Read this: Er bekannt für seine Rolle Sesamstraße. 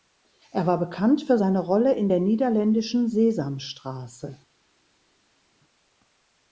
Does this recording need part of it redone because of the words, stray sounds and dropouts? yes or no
yes